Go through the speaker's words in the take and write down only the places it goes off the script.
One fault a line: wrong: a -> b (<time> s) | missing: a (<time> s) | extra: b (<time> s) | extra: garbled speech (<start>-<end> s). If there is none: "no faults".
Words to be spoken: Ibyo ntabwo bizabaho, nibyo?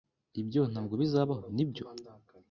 no faults